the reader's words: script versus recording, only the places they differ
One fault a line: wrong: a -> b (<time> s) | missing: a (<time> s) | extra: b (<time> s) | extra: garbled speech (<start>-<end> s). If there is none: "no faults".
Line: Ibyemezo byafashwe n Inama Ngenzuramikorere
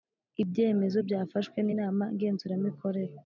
no faults